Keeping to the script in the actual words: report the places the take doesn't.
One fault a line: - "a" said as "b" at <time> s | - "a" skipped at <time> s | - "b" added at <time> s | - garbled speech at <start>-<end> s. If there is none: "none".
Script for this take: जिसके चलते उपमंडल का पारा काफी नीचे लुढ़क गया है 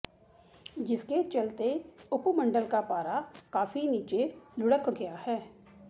none